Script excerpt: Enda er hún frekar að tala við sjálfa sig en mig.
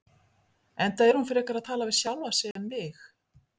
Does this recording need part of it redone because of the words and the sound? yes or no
yes